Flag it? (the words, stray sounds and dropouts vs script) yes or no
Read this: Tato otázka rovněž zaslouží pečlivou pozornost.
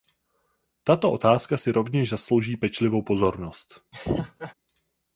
yes